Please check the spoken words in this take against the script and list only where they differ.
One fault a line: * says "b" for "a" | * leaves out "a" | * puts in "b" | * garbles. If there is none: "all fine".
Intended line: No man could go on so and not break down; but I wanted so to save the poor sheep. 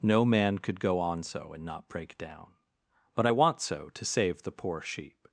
* says "want" for "wanted"